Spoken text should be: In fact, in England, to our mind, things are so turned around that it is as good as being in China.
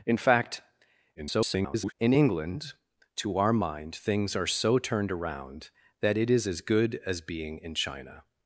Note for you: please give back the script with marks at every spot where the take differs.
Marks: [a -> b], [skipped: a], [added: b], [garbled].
In fact, [garbled] in England, to our mind, things are so turned around that it is as good as being in China.